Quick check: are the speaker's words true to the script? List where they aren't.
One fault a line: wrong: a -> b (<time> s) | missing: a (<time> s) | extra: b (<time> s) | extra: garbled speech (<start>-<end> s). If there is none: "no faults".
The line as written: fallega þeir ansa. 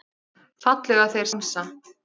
no faults